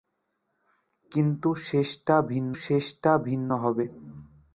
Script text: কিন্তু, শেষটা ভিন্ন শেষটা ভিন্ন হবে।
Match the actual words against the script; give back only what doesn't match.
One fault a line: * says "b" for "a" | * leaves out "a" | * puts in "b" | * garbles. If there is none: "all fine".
all fine